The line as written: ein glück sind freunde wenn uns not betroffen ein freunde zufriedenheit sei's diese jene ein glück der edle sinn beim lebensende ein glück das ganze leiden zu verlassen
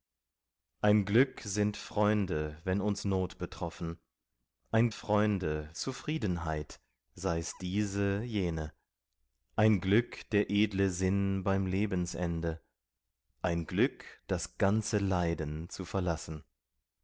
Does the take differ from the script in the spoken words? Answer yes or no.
no